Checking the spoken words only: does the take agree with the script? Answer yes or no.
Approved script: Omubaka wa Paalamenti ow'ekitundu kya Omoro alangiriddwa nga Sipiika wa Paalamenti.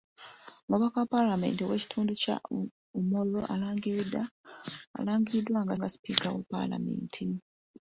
no